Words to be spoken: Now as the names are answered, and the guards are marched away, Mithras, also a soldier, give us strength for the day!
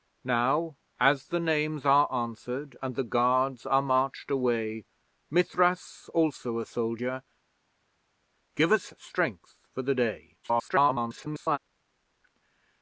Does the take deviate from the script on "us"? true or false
false